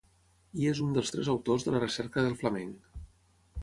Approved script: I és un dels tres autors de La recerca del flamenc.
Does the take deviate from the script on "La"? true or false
false